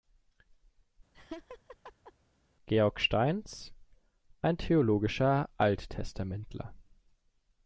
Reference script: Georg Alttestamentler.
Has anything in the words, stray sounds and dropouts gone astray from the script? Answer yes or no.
yes